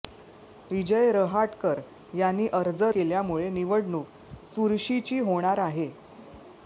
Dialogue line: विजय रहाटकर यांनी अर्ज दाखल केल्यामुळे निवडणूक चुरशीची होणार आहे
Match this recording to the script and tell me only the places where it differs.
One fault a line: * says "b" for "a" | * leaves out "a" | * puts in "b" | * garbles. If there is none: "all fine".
* leaves out "दाखल"